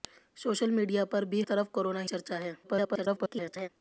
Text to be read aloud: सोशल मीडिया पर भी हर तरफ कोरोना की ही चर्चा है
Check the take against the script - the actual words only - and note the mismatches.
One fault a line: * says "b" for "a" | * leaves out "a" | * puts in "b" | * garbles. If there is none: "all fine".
* leaves out "हर"
* leaves out "की ही"
* garbles